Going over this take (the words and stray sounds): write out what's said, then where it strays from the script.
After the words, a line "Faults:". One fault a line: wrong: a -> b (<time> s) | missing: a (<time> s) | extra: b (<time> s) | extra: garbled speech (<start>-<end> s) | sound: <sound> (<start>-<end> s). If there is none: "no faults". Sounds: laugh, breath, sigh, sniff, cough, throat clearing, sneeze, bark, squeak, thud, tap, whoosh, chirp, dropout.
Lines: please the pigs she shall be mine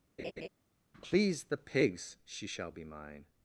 please the pigs she shall be mine
Faults:
sound: laugh (0.2-0.5 s)